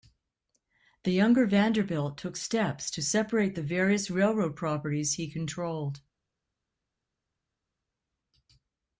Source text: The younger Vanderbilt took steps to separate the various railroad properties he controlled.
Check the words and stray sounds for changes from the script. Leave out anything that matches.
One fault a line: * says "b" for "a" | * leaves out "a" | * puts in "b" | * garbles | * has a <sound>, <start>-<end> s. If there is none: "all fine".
all fine